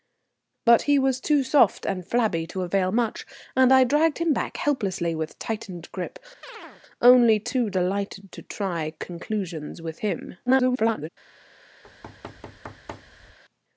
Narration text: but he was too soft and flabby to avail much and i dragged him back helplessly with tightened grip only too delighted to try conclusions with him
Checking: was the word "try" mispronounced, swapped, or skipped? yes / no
no